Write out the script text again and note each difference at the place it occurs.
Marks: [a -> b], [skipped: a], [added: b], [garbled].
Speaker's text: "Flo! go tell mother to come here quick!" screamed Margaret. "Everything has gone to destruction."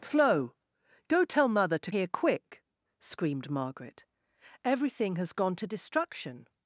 "Flo! go tell mother to [skipped: come] here quick!" screamed Margaret. "Everything has gone to destruction."